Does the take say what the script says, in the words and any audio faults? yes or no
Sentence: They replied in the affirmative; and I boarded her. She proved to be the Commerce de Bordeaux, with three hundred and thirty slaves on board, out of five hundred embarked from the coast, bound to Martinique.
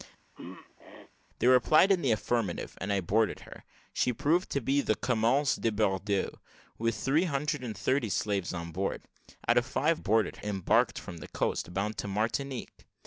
no